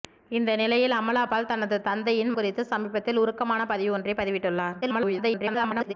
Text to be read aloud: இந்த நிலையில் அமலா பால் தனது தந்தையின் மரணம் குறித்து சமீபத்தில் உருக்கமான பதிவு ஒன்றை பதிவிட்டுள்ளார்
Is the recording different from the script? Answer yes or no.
yes